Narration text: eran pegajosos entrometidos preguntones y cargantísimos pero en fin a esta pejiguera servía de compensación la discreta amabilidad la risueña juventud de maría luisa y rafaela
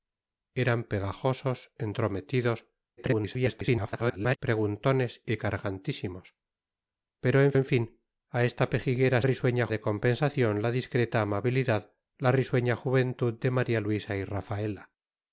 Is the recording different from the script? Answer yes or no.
yes